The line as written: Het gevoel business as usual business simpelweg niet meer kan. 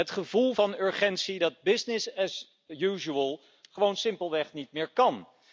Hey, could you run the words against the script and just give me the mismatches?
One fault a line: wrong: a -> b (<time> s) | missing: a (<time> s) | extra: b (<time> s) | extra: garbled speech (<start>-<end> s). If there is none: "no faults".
extra: van urgentie dat (0.5 s)
wrong: business -> gewoon (3.7 s)